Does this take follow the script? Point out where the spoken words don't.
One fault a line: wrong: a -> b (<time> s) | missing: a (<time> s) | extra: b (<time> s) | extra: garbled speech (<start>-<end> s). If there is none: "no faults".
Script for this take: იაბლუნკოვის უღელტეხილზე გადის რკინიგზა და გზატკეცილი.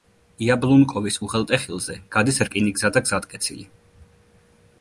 no faults